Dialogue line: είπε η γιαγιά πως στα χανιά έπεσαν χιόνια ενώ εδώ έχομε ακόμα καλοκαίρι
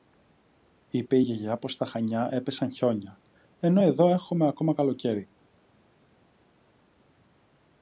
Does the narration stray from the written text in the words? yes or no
no